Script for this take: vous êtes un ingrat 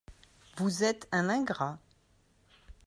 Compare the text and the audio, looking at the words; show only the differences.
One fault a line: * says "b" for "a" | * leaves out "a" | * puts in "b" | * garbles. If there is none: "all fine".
all fine